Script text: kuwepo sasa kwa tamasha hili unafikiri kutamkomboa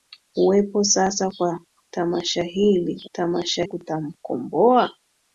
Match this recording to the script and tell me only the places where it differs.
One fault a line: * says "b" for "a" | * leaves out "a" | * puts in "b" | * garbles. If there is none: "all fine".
* says "tamasha" for "unafikiri"